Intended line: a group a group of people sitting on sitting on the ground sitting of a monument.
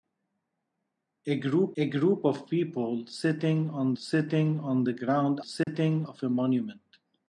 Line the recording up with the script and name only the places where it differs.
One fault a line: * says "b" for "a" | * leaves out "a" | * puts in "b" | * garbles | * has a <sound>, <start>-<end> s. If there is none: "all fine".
* has a dropout, 5.6-5.7 s